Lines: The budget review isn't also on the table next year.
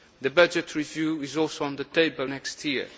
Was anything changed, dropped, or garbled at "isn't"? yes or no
yes